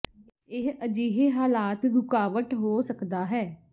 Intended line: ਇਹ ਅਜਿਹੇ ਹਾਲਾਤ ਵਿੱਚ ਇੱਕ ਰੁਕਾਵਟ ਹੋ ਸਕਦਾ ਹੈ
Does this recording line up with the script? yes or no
no